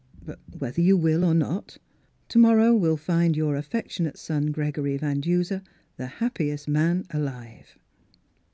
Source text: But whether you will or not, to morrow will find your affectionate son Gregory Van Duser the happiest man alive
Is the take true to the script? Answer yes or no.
yes